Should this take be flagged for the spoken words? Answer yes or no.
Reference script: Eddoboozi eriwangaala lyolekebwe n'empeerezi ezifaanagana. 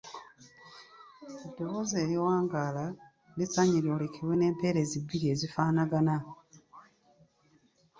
yes